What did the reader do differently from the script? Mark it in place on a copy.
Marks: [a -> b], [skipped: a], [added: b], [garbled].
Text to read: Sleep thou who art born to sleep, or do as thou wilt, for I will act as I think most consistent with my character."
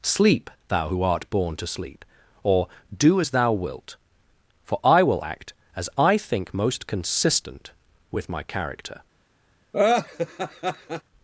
Sleep thou who art born to sleep, or do as thou wilt, for I will act as I think most consistent with my character."